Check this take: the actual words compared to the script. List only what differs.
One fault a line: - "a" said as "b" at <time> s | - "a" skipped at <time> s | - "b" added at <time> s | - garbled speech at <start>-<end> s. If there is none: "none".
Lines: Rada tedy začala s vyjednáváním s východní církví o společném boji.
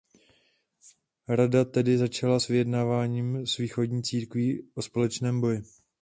none